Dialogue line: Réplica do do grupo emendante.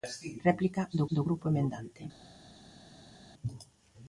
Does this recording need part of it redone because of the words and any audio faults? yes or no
no